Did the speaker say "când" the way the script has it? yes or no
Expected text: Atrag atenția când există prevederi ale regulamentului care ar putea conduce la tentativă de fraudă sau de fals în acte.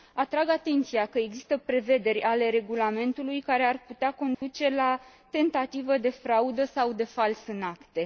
no